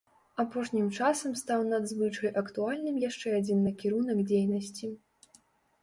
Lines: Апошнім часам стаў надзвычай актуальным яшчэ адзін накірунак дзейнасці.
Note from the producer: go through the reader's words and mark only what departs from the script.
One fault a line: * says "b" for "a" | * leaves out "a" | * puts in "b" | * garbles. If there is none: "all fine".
all fine